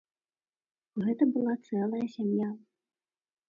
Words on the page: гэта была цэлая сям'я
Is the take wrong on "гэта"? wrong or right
right